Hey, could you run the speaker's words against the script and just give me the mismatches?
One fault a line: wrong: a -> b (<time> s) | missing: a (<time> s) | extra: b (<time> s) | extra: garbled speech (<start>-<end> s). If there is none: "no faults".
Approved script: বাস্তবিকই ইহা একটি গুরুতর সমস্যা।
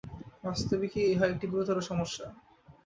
no faults